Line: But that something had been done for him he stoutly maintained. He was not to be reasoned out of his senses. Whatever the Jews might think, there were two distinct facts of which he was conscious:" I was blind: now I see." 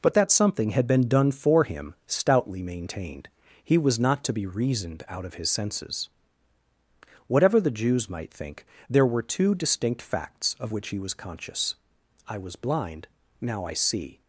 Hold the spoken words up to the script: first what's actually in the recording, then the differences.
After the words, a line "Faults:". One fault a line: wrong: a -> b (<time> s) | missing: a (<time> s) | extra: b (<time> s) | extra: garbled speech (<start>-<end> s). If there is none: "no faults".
But that something had been done for him stoutly maintained. He was not to be reasoned out of his senses. Whatever the Jews might think, there were two distinct facts of which he was conscious:" I was blind: now I see."
Faults:
missing: he (1.9 s)